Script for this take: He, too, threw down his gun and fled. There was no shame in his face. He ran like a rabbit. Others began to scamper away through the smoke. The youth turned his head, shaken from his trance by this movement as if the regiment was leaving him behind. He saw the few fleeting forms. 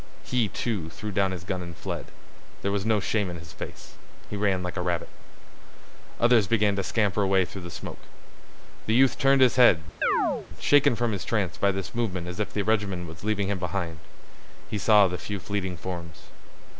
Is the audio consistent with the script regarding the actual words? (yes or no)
yes